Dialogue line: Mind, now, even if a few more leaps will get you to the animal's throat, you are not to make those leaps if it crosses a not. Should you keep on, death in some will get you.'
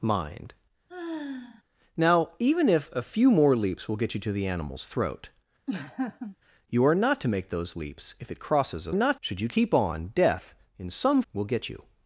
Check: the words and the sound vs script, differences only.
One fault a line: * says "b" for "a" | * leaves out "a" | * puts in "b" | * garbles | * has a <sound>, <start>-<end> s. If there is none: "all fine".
* has a sigh, 0.9-1.6 s
* has a laugh, 5.7-6.4 s